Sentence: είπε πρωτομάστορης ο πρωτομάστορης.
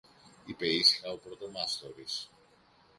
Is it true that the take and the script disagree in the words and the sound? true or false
true